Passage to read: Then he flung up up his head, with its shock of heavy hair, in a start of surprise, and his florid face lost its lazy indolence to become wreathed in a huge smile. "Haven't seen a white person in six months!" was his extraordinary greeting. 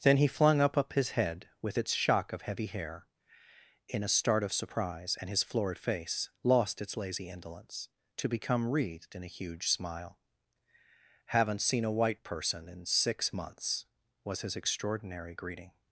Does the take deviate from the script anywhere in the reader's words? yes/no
no